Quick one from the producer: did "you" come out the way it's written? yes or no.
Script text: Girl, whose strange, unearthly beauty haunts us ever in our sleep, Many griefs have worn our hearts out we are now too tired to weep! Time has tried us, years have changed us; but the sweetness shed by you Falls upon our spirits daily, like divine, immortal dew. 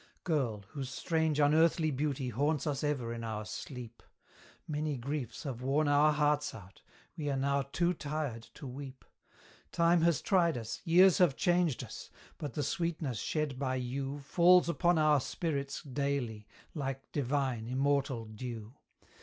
yes